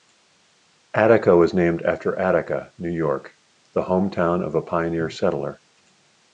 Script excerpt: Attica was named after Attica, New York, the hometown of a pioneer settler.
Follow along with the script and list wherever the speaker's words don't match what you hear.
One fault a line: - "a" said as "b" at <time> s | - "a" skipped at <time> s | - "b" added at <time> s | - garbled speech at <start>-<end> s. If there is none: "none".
none